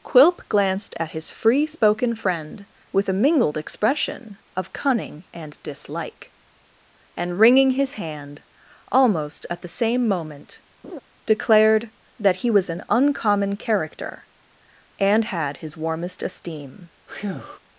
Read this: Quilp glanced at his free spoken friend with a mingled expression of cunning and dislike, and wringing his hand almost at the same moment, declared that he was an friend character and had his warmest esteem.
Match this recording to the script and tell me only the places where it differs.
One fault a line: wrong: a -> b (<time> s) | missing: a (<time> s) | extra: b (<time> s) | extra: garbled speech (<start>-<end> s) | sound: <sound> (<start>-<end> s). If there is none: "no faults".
sound: laugh (10.8-11.0 s)
wrong: friend -> uncommon (12.9 s)
sound: breath (17.1-17.6 s)